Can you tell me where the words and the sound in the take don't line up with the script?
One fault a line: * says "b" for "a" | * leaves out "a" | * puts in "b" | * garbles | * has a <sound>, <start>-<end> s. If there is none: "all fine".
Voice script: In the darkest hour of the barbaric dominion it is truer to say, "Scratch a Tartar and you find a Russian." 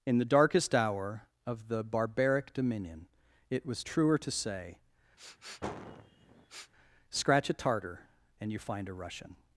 * says "was" for "is"
* has a sniff, 5.2-6.7 s